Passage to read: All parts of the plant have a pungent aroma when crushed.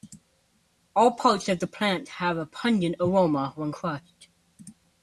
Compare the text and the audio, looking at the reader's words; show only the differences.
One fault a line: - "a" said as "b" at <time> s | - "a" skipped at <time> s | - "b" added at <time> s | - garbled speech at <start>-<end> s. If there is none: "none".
none